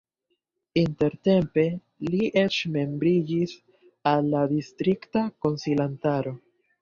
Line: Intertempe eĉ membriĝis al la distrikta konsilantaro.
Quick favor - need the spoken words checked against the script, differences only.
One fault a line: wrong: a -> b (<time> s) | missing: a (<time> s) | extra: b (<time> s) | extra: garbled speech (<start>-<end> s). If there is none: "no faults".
extra: li (2.1 s)